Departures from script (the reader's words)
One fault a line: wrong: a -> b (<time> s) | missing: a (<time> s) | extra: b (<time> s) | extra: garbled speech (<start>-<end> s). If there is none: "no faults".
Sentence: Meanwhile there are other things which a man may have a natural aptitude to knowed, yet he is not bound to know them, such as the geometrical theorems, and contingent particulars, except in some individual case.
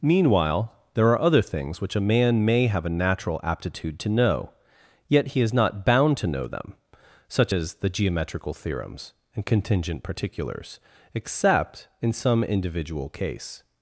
wrong: knowed -> know (4.1 s)